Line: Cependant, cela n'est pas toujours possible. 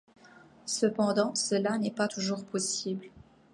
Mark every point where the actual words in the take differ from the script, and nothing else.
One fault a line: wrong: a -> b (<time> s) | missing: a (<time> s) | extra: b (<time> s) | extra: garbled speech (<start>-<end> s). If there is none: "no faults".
no faults